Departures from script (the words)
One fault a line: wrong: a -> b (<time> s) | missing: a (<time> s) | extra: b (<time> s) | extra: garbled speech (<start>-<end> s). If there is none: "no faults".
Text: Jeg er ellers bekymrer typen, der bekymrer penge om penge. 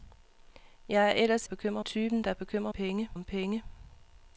no faults